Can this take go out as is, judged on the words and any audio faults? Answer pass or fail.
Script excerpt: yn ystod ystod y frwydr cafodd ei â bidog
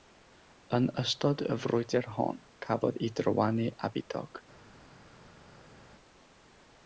fail